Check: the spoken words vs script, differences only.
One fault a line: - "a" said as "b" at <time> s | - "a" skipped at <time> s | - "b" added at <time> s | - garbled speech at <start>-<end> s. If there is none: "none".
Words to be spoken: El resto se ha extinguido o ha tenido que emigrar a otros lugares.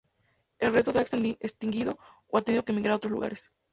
none